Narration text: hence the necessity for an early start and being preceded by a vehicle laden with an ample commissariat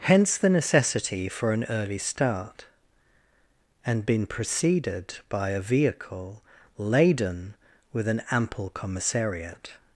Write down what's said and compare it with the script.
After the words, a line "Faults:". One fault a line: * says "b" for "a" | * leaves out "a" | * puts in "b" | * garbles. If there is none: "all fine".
hence the necessity for an early start and been preceded by a vehicle laden with an ample commissariat
Faults:
* says "been" for "being"